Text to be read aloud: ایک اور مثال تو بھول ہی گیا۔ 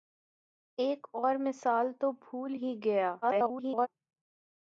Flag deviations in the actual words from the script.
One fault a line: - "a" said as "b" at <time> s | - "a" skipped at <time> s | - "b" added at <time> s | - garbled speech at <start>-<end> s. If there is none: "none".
- garbled speech at 3.2-3.9 s